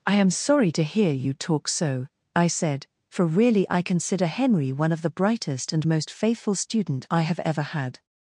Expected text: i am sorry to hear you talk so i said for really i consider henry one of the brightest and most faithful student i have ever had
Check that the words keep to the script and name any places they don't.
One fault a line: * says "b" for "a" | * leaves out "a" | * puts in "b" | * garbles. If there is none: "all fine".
all fine